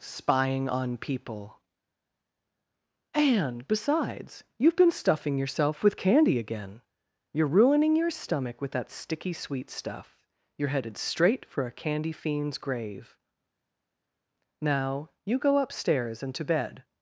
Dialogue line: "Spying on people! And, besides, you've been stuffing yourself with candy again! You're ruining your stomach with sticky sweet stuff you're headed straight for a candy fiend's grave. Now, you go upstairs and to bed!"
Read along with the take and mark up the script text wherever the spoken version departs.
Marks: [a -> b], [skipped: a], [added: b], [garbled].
"Spying on people! And, besides, you've been stuffing yourself with candy again! You're ruining your stomach with [added: that] sticky sweet stuff you're headed straight for a candy fiend's grave. Now, you go upstairs and to bed!"